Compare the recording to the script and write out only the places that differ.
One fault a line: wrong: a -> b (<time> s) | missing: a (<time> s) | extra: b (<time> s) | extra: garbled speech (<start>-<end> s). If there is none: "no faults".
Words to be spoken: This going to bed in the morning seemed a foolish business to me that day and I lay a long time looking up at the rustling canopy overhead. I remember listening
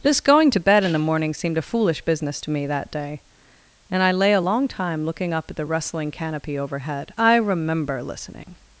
no faults